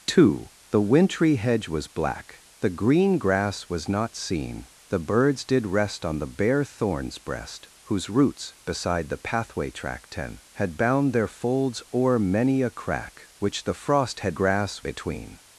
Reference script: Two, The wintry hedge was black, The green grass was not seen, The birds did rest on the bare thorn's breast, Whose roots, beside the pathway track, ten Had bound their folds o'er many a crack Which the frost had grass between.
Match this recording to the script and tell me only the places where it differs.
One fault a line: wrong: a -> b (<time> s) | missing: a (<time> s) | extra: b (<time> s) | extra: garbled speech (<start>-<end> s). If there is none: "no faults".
no faults